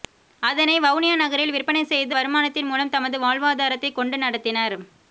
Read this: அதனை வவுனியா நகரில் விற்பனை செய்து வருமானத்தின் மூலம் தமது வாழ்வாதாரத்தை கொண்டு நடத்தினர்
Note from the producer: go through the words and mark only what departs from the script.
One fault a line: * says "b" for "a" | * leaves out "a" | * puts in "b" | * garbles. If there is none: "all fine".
all fine